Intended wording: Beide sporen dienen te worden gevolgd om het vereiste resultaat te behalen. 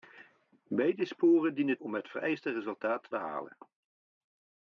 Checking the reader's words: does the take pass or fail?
fail